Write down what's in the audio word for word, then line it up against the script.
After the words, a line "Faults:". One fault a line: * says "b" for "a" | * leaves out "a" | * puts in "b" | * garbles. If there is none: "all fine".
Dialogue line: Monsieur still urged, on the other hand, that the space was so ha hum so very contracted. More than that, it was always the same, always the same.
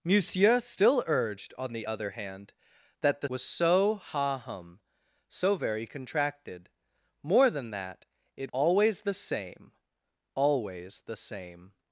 Monsieur still urged, on the other hand, that the was so ha hum so very contracted. More than that, it always the same, always the same.
Faults:
* leaves out "space"
* leaves out "was"